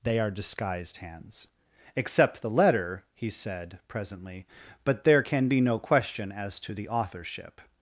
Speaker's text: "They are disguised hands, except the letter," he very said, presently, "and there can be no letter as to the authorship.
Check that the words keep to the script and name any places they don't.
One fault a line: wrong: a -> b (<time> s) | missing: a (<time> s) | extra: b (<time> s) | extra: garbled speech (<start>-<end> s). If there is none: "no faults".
missing: very (3.3 s)
wrong: and -> but (4.9 s)
wrong: letter -> question (5.8 s)